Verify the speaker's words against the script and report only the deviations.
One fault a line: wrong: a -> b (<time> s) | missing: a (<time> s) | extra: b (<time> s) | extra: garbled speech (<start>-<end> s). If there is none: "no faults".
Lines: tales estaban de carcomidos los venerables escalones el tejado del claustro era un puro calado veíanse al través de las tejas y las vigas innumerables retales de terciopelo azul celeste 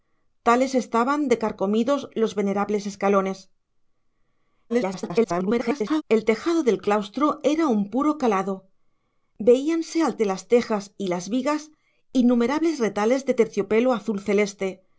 extra: garbled speech (4.7-6.0 s)
missing: través (10.2 s)